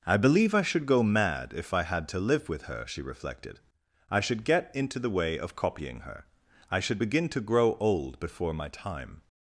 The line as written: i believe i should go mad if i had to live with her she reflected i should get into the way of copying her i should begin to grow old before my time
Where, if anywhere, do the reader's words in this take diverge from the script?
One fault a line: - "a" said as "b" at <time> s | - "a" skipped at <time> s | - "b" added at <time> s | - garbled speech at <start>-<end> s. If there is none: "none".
none